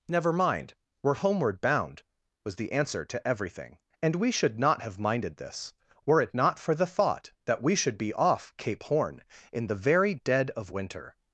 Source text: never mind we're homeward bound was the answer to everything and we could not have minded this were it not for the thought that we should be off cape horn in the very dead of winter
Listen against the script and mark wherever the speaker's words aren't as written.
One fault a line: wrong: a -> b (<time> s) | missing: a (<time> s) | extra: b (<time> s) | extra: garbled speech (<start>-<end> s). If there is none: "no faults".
wrong: could -> should (4.3 s)